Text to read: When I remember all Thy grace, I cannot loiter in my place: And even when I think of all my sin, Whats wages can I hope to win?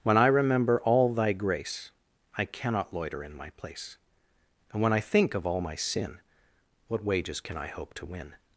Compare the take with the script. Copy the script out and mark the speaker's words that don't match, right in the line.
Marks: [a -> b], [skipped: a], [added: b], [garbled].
When I remember all Thy grace, I cannot loiter in my place: And [skipped: even] when I think of all my sin, [Whats -> What] wages can I hope to win?